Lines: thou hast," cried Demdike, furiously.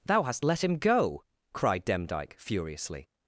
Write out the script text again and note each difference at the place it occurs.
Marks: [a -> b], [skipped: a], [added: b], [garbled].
thou hast," [added: let him go] cried Demdike, furiously.